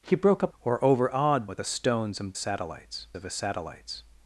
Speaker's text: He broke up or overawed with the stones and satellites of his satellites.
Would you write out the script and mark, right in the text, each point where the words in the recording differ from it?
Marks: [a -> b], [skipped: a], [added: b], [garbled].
He broke up or overawed with the stones and satellites of his satellites.